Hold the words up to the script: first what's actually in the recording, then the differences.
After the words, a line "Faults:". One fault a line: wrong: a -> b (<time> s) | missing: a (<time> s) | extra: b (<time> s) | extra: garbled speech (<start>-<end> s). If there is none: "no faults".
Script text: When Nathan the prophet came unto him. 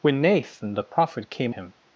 When Nathan the prophet came him.
Faults:
missing: unto (1.6 s)